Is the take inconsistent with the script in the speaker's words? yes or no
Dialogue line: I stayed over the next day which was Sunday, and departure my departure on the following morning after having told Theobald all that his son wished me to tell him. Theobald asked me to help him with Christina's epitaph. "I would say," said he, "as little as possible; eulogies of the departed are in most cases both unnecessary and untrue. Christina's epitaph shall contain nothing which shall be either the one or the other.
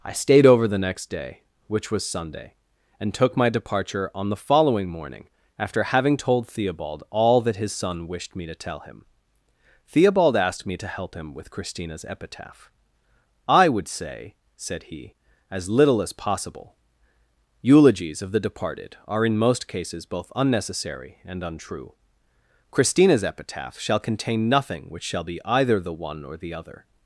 yes